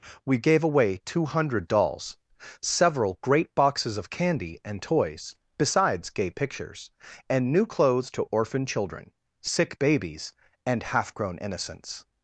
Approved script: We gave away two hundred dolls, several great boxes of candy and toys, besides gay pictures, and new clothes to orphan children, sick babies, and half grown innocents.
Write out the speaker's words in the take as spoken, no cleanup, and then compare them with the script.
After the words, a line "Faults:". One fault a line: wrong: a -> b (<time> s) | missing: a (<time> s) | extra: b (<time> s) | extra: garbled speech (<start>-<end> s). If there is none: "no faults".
We gave away two hundred dolls, several great boxes of candy and toys, besides gay pictures, and new clothes to orphan children, sick babies, and half grown innocents.
Faults:
no faults